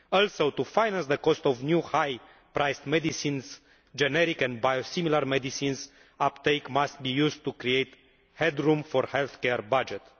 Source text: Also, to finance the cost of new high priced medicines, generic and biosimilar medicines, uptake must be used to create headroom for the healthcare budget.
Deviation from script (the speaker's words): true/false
false